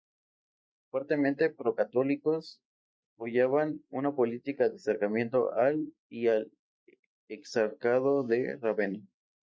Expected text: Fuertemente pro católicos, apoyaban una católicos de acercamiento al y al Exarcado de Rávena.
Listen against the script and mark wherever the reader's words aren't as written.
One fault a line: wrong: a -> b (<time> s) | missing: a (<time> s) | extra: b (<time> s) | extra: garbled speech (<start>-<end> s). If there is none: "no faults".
wrong: católicos -> política (4.2 s)